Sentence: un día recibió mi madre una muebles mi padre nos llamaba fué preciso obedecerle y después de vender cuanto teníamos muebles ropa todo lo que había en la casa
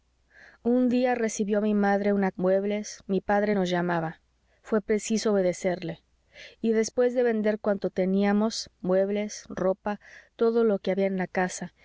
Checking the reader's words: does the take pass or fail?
pass